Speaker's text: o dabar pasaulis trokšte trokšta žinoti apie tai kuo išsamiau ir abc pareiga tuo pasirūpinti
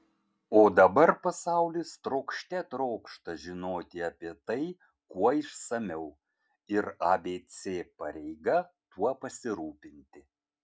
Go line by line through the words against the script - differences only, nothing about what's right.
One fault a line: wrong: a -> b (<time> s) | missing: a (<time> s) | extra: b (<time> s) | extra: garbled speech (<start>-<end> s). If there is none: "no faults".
no faults